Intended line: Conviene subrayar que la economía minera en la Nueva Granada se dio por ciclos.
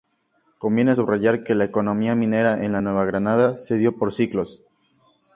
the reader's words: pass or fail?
pass